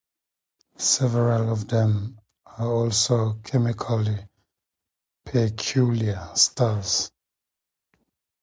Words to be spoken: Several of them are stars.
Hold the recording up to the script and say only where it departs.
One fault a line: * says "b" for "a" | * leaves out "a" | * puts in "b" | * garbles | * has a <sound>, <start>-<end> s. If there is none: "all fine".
* puts in "also chemically peculiar"